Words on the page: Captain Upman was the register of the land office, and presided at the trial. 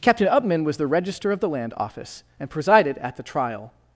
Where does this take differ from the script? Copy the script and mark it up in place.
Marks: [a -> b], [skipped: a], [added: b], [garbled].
Captain Upman was the register of the land office, and presided at the trial.